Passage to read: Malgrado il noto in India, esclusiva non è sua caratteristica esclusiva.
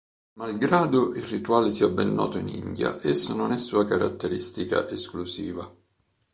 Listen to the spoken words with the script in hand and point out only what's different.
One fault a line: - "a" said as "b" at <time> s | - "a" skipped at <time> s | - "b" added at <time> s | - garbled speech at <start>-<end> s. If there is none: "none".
- "rituale sia ben" added at 1.2 s
- "esclusiva" said as "esso" at 3.0 s